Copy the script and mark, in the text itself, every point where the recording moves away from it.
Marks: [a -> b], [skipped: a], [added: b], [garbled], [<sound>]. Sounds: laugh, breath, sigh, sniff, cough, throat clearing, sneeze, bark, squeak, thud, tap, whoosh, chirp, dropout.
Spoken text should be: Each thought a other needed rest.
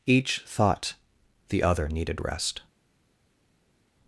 Each thought [a -> the] other needed rest.